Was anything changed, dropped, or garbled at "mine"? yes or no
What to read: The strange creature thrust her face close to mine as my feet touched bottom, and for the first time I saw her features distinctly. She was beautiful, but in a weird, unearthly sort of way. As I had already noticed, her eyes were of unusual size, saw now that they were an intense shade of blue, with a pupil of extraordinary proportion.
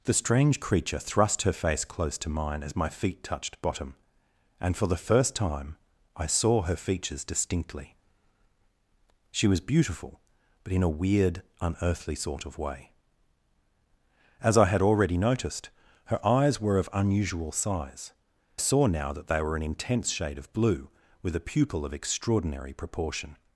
no